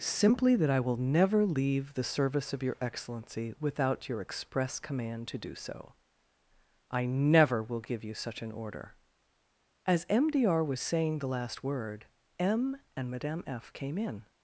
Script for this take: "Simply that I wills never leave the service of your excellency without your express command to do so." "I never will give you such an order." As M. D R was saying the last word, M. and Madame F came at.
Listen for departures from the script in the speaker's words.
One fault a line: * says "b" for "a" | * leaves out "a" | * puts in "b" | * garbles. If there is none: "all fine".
* says "will" for "wills"
* says "in" for "at"